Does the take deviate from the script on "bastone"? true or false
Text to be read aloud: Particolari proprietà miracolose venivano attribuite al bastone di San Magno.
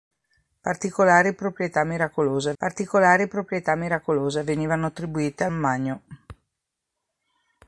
true